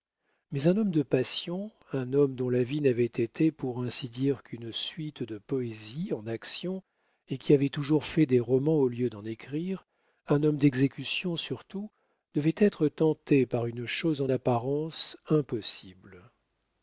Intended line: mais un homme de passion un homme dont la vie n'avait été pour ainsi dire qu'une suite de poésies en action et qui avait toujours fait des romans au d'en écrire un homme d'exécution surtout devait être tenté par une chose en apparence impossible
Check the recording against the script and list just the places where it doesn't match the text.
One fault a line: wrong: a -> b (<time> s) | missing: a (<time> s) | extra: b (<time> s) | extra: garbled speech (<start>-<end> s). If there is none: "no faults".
extra: lieu (8.9 s)